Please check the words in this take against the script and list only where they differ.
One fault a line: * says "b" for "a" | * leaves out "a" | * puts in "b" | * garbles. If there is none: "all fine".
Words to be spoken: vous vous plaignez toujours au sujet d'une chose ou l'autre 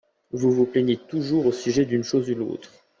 all fine